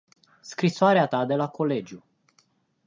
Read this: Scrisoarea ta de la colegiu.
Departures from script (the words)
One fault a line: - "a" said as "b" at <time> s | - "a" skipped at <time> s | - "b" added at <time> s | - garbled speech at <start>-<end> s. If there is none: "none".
none